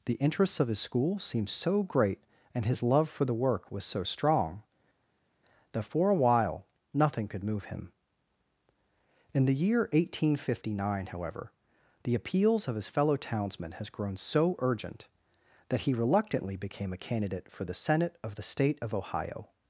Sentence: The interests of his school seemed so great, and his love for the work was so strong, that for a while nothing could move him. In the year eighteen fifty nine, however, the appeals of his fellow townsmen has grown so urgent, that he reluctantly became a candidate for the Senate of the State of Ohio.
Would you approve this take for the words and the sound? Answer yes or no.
yes